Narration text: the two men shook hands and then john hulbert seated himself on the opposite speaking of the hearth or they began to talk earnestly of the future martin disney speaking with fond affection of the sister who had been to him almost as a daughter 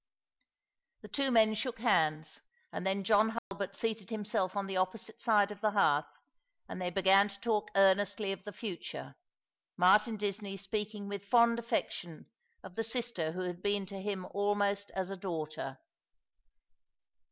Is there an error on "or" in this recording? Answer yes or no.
yes